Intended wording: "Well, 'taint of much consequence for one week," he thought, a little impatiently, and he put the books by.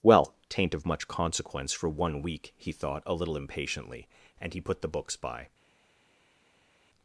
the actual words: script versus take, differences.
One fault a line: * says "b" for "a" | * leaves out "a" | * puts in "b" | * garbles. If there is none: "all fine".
all fine